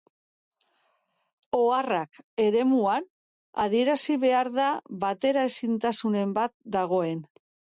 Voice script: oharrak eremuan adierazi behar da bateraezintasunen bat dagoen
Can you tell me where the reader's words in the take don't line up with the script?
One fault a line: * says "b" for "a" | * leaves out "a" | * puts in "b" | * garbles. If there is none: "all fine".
all fine